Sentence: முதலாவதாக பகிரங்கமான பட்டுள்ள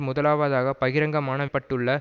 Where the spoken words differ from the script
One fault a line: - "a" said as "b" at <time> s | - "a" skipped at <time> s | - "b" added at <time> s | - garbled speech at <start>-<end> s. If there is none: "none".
none